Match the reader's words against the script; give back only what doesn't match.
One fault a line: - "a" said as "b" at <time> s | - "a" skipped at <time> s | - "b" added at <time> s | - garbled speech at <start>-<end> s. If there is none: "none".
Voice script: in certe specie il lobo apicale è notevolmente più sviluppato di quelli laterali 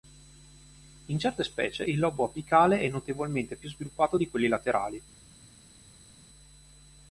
none